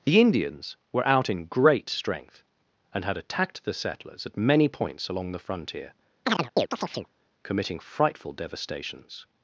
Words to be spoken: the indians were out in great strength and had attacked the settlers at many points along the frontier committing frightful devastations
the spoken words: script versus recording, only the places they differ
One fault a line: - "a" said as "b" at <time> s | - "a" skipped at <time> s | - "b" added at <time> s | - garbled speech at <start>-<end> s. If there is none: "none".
none